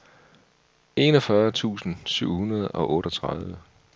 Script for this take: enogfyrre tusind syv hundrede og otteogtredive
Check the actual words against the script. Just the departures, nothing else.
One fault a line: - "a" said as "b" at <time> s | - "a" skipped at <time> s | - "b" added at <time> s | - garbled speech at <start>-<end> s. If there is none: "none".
none